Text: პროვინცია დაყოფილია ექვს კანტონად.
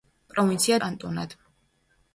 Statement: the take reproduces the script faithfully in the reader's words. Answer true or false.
false